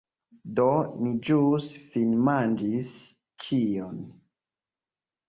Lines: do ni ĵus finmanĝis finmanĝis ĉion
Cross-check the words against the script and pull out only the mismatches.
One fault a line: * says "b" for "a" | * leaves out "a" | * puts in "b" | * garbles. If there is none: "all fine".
* leaves out "finmanĝis"